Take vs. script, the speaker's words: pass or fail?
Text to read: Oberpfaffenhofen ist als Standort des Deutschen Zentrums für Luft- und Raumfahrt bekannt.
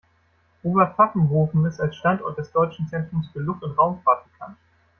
pass